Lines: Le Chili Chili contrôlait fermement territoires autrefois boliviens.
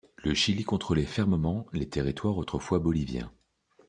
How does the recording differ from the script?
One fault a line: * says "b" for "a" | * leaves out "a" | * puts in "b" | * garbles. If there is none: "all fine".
* leaves out "Chili"
* puts in "les"